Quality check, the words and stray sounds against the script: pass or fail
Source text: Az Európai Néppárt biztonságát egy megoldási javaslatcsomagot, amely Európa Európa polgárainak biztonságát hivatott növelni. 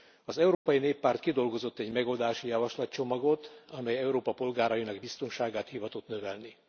fail